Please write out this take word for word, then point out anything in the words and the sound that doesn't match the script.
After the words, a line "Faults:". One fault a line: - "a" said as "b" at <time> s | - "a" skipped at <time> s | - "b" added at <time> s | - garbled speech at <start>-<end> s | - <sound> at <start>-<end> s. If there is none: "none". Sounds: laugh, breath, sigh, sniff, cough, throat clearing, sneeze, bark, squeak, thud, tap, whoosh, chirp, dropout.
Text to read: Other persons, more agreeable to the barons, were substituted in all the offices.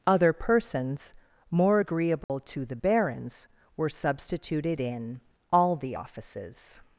Other persons, more agreeable to the barons, were substituted in all the offices.
Faults:
- dropout at 2.2-2.3 s